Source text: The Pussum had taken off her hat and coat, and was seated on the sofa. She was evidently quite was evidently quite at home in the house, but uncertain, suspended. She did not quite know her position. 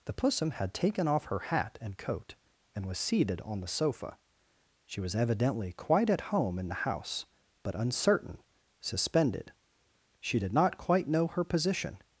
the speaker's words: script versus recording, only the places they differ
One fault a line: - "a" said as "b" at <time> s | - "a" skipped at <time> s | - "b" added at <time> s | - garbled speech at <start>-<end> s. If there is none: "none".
- "was evidently quite" skipped at 6.1 s